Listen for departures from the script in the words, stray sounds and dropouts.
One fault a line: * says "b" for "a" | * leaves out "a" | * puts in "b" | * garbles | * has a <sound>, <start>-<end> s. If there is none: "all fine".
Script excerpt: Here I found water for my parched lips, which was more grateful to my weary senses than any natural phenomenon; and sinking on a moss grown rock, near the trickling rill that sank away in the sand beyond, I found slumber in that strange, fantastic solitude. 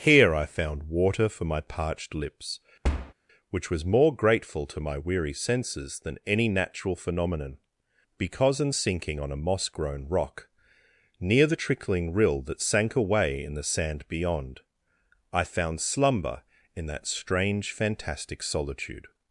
* has a thud, 2.8-3.1 s
* says "because in" for "and"